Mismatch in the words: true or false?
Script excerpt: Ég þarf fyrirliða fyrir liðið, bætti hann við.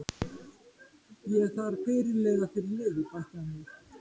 false